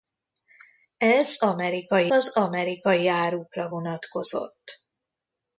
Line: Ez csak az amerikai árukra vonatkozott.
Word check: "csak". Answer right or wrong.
wrong